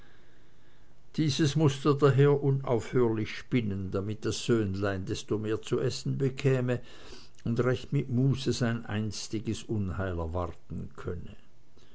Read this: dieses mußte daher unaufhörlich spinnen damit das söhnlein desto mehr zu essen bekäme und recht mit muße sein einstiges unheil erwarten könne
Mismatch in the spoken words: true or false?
false